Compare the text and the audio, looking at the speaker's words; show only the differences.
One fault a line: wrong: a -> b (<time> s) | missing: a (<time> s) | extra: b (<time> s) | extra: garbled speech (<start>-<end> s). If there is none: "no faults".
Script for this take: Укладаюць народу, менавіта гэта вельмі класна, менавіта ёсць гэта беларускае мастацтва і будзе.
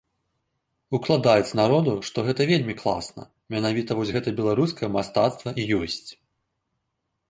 wrong: менавіта -> што (2.1 s)
wrong: ёсць -> вось (4.0 s)
wrong: будзе -> ёсць (5.8 s)